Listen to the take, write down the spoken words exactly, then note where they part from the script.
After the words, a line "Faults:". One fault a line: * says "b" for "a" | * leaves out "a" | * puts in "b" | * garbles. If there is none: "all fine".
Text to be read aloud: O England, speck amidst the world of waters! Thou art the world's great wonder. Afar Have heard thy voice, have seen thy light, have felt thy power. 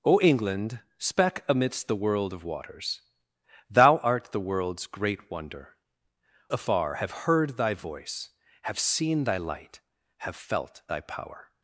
O England, speck amidst the world of waters! Thou art the world's great wonder. Afar Have heard thy voice, have seen thy light, have felt thy power.
Faults:
all fine